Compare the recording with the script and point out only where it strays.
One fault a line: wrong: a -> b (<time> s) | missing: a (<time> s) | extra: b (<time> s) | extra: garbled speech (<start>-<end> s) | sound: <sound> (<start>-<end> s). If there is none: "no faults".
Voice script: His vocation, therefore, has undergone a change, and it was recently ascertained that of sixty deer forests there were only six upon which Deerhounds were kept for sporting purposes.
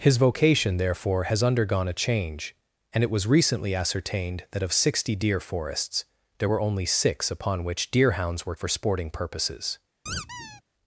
missing: kept (8.5 s)
sound: squeak (10.1-10.6 s)